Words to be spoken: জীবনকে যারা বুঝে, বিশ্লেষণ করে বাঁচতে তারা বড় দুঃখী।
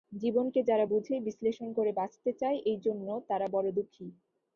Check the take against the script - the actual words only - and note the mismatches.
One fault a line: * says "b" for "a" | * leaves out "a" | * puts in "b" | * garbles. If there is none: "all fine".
* puts in "চায় এইজন্য"